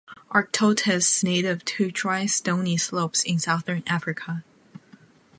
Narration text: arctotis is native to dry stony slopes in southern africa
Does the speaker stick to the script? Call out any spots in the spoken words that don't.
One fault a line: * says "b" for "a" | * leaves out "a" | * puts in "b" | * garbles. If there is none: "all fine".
* leaves out "is"